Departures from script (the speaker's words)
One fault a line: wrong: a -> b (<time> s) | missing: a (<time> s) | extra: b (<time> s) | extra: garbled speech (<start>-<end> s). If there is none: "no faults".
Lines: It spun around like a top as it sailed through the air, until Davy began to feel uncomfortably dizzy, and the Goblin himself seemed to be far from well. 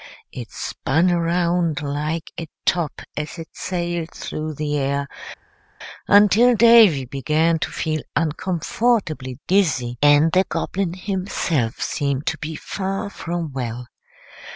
no faults